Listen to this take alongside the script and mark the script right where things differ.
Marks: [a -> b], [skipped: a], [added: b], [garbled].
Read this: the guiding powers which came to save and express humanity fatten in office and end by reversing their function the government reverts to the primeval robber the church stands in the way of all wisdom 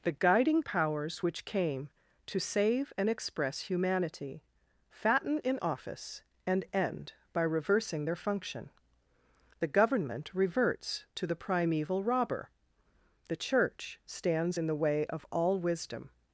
the guiding powers which came to save and express humanity fatten in office and end by reversing their function the government reverts to the primeval robber the church stands in the way of all wisdom